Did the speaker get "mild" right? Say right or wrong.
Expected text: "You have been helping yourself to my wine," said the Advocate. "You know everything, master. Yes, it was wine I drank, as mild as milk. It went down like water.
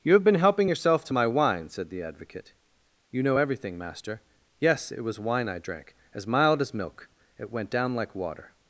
right